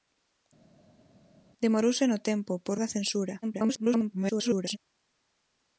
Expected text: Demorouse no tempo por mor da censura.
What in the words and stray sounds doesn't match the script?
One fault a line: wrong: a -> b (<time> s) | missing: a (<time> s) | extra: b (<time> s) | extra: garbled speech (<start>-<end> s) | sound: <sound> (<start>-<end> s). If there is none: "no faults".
missing: mor (2.8 s)
extra: garbled speech (3.4-4.8 s)